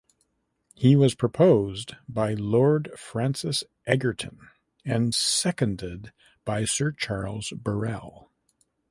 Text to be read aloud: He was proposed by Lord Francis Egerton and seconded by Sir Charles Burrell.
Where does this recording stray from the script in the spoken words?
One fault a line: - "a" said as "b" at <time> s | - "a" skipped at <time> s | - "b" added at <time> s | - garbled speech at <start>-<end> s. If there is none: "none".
none